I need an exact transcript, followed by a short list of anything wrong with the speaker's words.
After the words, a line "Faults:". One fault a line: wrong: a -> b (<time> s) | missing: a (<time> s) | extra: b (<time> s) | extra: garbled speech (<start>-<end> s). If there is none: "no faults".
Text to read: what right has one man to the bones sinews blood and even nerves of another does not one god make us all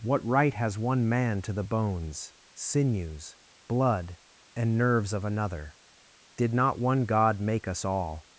what right has one man to the bones sinews blood and nerves of another did not one god make us all
Faults:
missing: even (4.8 s)
wrong: does -> did (6.4 s)